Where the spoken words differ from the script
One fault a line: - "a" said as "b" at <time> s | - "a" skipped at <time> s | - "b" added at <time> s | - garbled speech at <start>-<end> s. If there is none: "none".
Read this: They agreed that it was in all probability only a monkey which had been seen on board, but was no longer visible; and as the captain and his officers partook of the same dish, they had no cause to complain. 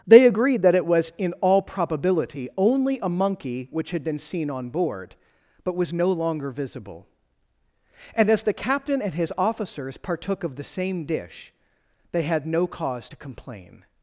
none